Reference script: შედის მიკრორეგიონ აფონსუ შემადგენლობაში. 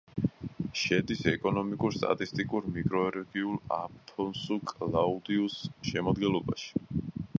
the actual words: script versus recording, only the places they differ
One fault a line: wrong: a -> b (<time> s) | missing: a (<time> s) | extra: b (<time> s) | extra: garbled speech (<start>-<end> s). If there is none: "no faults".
extra: ეკონომიკურ სტატისტიკურ (1.3 s)
extra: კლაუდიუს (4.7 s)